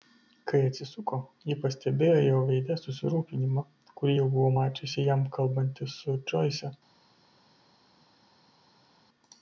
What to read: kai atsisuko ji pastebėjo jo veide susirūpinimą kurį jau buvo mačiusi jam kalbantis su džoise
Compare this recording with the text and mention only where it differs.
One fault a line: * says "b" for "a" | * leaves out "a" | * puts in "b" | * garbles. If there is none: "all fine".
all fine